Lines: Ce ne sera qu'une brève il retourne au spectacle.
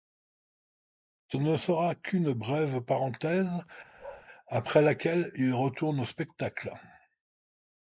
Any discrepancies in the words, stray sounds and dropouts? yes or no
yes